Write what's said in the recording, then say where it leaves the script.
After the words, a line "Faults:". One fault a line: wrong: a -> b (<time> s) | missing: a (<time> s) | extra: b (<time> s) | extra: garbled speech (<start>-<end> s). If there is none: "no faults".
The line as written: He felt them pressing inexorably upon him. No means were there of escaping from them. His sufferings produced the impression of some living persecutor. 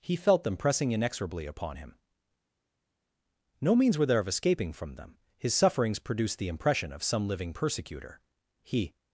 He felt them pressing inexorably upon him. No means were there of escaping from them. His sufferings produced the impression of some living persecutor. He
Faults:
extra: He (8.6 s)